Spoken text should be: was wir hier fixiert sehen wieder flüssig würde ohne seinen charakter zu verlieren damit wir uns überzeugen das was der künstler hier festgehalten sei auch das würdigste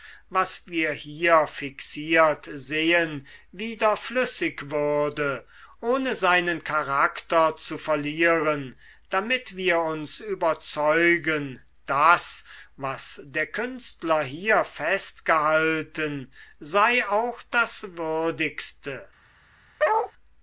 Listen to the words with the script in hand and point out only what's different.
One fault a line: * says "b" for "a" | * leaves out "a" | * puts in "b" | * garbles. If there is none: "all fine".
all fine